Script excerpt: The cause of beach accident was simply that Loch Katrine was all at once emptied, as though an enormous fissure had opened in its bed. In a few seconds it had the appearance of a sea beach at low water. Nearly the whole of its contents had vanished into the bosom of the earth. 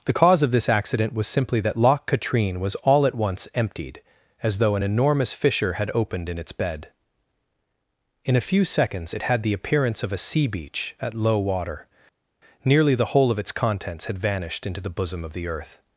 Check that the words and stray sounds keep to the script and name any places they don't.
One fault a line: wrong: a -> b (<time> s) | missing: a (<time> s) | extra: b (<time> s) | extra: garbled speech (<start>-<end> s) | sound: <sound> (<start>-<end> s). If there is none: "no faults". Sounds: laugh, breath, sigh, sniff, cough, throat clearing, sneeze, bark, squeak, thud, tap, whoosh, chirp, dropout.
wrong: beach -> this (0.5 s)